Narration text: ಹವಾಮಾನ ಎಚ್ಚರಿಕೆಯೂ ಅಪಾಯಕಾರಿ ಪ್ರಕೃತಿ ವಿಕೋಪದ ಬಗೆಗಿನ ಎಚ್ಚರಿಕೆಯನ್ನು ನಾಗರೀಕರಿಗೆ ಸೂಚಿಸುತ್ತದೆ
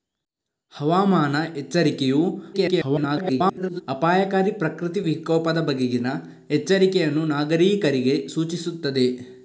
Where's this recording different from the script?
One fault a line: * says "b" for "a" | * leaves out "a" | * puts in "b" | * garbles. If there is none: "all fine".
* garbles